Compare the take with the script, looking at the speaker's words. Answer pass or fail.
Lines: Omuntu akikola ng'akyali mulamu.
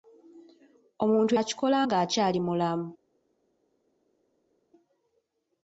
pass